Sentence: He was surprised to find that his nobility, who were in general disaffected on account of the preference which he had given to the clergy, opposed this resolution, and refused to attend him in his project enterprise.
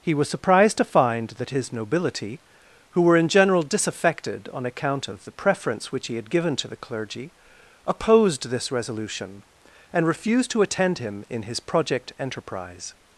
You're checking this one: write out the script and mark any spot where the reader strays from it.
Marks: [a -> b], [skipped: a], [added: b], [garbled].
He was surprised to find that his nobility, who were in general disaffected on account of the preference which he had given to the clergy, opposed this resolution, and refused to attend him in his project enterprise.